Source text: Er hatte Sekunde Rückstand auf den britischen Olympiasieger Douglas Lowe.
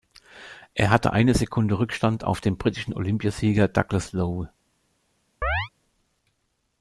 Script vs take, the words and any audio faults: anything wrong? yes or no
yes